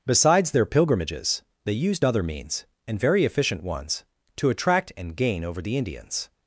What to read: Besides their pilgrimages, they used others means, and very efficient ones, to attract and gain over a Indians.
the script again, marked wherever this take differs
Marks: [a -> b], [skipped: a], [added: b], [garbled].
Besides their pilgrimages, they used [others -> other] means, and very efficient ones, to attract and gain over [a -> the] Indians.